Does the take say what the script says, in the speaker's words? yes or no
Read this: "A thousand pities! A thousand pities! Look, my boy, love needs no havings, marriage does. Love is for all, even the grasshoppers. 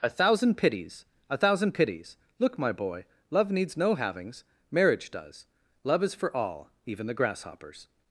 yes